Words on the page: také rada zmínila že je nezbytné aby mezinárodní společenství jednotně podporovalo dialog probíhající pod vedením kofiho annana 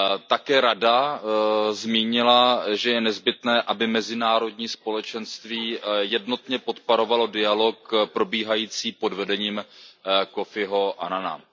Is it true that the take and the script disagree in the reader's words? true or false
false